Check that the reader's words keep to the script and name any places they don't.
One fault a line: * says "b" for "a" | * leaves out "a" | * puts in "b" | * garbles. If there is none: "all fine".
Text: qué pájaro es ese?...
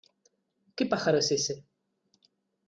all fine